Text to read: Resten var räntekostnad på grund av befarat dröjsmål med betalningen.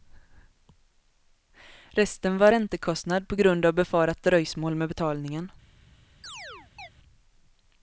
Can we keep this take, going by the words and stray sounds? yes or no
no